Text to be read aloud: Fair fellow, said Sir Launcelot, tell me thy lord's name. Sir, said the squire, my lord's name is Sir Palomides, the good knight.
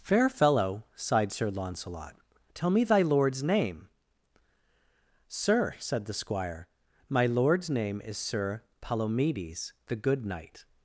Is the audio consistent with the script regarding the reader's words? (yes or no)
no